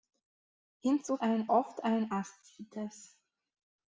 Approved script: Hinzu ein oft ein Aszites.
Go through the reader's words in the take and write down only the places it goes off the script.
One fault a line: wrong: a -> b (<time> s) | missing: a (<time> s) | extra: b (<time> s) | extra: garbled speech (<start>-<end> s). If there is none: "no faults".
no faults